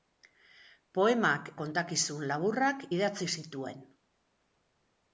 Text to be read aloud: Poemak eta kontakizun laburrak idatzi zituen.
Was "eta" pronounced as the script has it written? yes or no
no